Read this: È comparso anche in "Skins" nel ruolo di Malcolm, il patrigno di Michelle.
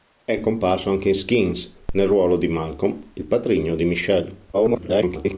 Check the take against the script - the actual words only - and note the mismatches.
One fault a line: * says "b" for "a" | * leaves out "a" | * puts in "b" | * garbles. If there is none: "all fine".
* garbles